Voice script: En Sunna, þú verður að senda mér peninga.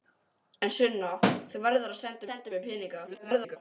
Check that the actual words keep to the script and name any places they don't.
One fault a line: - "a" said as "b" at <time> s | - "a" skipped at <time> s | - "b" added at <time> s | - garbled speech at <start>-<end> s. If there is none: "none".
- "senda" added at 2.3 s
- garbled speech at 3.1-3.6 s